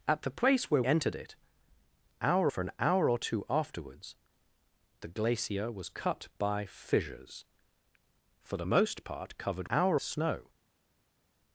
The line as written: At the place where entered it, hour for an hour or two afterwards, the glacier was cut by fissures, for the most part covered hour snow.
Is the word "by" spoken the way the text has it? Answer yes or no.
yes